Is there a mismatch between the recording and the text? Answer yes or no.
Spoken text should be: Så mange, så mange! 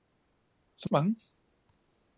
yes